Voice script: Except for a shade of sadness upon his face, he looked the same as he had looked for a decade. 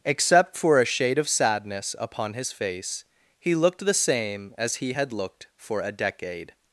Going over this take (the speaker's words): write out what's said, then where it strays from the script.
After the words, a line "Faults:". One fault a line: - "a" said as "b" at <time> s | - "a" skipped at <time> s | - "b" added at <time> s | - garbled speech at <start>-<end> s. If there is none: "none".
Except for a shade of sadness upon his face, he looked the same as he had looked for a decade.
Faults:
none